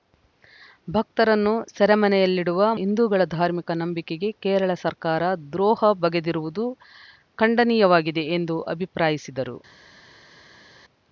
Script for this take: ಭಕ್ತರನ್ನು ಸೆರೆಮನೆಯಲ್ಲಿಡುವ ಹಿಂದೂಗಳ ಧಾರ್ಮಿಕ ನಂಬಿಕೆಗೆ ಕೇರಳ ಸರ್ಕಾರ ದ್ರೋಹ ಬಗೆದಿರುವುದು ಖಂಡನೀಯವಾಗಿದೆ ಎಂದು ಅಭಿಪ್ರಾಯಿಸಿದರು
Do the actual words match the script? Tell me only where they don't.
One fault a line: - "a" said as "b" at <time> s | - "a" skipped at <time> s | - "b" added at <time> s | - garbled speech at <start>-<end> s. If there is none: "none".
none